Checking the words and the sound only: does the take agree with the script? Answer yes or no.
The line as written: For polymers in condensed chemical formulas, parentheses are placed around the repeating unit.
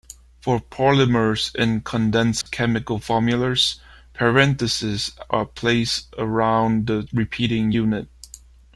no